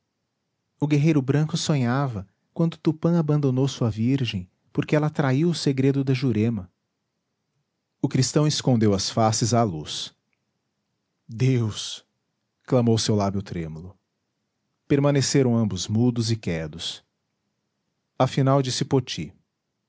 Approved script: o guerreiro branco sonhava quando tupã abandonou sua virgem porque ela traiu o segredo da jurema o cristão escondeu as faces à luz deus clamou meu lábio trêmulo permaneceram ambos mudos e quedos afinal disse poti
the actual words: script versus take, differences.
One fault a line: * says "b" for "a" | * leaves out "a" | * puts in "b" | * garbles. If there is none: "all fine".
* says "seu" for "meu"